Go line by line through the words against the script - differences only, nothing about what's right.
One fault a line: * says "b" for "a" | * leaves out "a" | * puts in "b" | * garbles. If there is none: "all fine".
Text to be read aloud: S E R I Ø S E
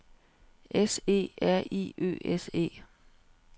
all fine